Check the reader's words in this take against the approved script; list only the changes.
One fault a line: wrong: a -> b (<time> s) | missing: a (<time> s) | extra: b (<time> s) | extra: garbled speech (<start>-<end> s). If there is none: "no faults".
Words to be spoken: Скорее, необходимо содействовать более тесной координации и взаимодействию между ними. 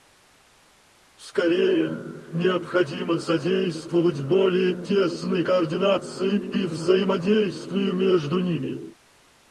no faults